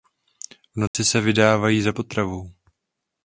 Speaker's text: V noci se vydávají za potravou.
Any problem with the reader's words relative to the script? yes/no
no